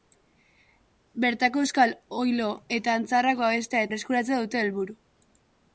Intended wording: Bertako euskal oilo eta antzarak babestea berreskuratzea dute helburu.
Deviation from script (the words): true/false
false